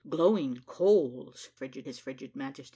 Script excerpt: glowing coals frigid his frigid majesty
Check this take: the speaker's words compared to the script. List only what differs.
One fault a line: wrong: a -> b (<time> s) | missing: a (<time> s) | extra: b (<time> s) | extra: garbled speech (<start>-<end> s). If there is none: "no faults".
no faults